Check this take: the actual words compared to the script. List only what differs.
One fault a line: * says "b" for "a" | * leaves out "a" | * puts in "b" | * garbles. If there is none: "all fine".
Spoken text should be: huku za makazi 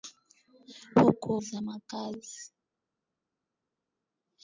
all fine